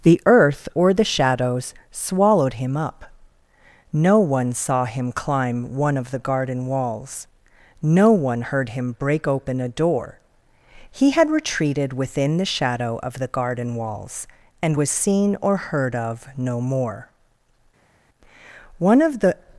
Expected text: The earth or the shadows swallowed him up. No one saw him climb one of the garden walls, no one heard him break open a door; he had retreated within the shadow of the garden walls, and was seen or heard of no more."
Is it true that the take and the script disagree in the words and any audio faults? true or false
true